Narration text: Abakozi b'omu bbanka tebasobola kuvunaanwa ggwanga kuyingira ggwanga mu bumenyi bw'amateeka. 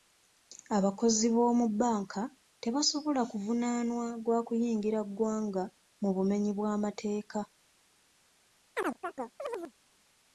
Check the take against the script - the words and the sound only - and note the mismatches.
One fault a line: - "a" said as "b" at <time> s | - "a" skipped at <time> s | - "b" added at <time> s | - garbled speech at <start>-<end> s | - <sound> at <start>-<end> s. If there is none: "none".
- "ggwanga" said as "gwa" at 4.2 s
- chirp at 8.8-9.7 s